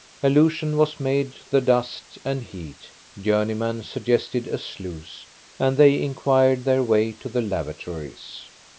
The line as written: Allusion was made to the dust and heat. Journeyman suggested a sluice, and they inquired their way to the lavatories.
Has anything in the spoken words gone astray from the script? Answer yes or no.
no